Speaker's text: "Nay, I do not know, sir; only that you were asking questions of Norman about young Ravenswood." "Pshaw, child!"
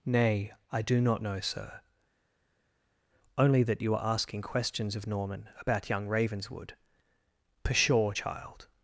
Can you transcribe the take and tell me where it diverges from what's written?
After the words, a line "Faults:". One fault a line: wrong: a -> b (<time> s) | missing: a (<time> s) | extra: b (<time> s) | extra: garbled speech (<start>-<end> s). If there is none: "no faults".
"Nay, I do not know, sir; only that you are asking questions of Norman about young Ravenswood." "Pshaw, child!"
Faults:
wrong: were -> are (3.9 s)